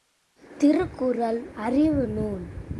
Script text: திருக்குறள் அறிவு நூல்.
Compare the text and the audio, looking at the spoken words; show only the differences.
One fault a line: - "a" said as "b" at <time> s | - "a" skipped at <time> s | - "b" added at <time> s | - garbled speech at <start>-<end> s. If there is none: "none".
none